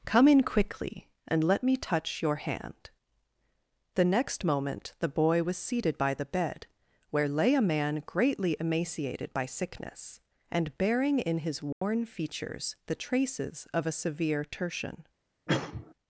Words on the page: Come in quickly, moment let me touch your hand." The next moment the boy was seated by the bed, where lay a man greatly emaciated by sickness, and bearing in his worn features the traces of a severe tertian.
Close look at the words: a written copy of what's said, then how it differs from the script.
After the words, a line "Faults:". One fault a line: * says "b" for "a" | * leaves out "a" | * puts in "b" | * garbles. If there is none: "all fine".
Come in quickly, and let me touch your hand." The next moment the boy was seated by the bed, where lay a man greatly emaciated by sickness, and bearing in his worn features the traces of a severe tertian.
Faults:
* says "and" for "moment"